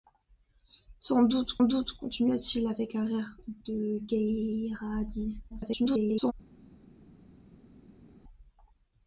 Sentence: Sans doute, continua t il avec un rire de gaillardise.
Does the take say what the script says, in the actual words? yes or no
no